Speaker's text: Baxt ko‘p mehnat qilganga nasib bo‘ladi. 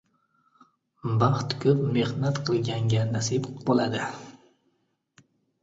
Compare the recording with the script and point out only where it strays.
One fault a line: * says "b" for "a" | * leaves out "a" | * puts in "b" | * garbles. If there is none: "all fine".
all fine